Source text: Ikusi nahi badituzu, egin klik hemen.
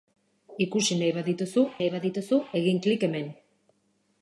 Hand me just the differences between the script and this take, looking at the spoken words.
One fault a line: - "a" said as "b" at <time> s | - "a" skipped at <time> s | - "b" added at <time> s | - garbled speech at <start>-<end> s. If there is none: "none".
- "nahi badituzu" added at 1.8 s